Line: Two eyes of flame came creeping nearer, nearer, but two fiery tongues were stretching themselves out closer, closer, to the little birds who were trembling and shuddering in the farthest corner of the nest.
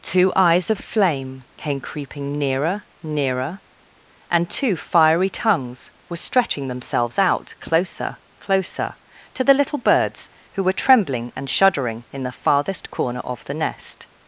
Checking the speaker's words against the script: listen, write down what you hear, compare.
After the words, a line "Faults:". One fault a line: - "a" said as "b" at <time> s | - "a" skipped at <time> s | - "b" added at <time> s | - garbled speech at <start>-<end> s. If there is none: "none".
Two eyes of flame came creeping nearer, nearer, and two fiery tongues were stretching themselves out closer, closer, to the little birds who were trembling and shuddering in the farthest corner of the nest.
Faults:
- "but" said as "and" at 4.3 s